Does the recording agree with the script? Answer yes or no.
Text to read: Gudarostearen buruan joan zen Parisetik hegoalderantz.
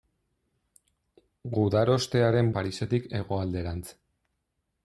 no